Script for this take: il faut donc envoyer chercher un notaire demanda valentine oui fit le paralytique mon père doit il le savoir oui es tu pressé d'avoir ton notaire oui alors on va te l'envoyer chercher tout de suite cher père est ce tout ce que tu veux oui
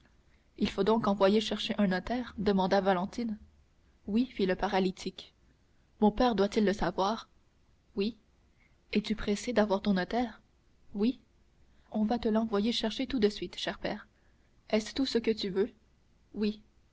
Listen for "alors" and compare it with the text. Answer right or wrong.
wrong